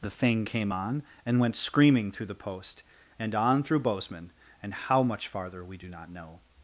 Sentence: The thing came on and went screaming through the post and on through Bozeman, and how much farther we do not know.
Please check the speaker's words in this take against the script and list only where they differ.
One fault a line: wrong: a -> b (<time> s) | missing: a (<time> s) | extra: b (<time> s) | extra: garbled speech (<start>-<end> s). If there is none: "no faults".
no faults